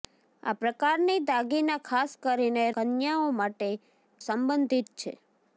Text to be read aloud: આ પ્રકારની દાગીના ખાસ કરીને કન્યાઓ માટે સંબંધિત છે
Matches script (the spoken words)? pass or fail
pass